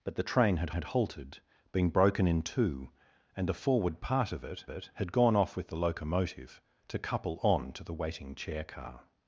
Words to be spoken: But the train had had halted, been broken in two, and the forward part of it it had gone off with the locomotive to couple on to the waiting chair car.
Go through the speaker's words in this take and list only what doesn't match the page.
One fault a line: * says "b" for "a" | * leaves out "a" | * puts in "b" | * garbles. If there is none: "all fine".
all fine